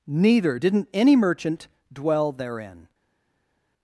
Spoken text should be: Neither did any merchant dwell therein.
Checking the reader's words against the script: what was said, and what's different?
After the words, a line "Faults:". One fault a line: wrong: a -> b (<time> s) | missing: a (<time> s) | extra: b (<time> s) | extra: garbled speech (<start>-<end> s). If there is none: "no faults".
Neither didn't any merchant dwell therein.
Faults:
wrong: did -> didn't (0.5 s)